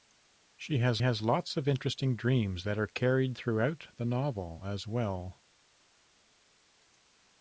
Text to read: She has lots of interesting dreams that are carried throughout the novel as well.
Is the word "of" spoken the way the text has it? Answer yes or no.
yes